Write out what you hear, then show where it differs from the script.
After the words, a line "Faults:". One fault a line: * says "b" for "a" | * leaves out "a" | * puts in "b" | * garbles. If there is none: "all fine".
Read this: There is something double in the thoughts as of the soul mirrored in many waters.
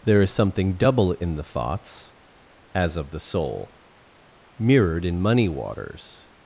There is something double in the thoughts as of the soul mirrored in money waters.
Faults:
* says "money" for "many"